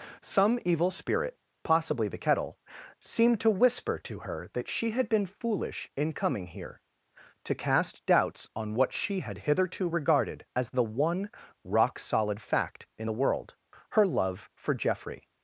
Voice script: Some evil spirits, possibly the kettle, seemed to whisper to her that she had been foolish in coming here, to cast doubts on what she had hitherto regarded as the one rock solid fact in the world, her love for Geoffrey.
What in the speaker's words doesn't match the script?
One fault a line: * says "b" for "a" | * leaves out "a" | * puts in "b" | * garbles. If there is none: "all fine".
* says "spirit" for "spirits"